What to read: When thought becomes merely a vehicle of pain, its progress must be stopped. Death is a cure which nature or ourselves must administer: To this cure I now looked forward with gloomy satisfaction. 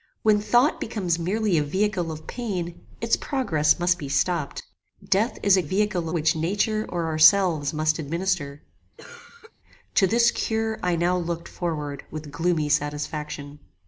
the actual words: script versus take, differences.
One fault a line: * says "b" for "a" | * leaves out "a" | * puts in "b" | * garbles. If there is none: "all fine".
* says "vehicle" for "cure"